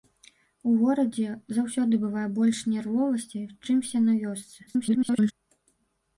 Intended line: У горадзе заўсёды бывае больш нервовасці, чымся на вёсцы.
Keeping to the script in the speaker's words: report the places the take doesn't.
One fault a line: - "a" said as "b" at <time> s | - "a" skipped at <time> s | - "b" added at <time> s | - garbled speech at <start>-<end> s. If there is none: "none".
- garbled speech at 4.7-5.3 s